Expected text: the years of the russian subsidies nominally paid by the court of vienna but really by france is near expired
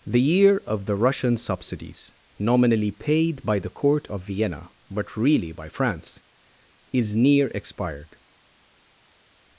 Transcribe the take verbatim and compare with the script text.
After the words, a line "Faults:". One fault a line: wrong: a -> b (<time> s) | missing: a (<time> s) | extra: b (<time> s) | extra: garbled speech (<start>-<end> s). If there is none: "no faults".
the year of the russian subsidies nominally paid by the court of vienna but really by france is near expired
Faults:
wrong: years -> year (0.2 s)